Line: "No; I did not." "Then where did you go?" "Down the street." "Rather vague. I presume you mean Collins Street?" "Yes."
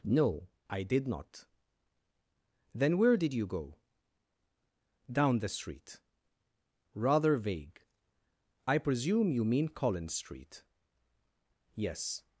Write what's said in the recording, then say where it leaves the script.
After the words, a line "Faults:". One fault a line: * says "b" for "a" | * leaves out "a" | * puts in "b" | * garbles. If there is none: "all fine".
"No; I did not." "Then where did you go?" "Down the street." "Rather vague. I presume you mean Collins Street?" "Yes."
Faults:
all fine